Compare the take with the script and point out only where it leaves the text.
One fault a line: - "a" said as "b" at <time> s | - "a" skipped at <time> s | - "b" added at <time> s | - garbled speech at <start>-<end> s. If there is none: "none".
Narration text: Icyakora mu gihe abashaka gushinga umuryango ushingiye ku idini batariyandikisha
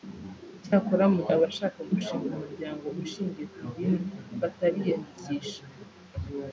- "gihe" skipped at 1.2 s